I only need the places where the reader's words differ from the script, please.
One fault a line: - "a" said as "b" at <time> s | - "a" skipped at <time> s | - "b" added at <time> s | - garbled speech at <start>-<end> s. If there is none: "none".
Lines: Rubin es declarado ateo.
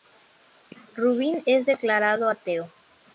none